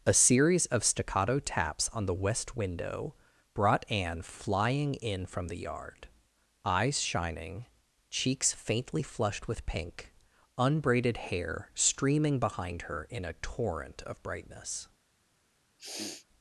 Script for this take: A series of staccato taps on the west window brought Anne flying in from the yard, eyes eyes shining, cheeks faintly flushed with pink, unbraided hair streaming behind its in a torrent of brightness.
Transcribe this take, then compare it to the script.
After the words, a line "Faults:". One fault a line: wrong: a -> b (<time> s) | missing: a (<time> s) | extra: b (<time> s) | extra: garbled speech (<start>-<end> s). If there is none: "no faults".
A series of staccato taps on the west window brought Anne flying in from the yard, eyes shining, cheeks faintly flushed with pink, unbraided hair streaming behind her in a torrent of brightness.
Faults:
missing: eyes (7.0 s)
wrong: its -> her (12.8 s)